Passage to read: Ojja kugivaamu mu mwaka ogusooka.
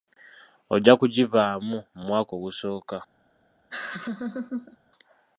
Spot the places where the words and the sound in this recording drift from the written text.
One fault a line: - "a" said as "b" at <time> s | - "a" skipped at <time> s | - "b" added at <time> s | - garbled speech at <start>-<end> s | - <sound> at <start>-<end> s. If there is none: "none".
- laugh at 3.7-4.8 s